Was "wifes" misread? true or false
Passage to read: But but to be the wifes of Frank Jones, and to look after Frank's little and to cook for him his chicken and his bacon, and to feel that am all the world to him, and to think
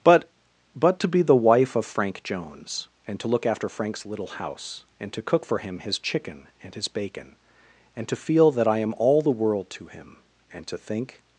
true